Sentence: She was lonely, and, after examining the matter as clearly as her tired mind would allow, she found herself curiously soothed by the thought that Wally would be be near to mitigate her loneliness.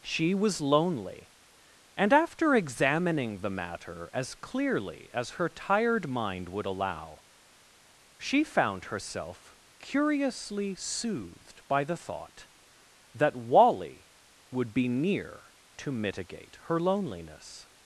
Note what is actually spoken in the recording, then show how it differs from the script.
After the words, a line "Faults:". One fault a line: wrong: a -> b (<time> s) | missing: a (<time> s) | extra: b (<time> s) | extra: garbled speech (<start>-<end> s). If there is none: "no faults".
She was lonely, and, after examining the matter as clearly as her tired mind would allow, she found herself curiously soothed by the thought that Wally would be near to mitigate her loneliness.
Faults:
missing: be (14.9 s)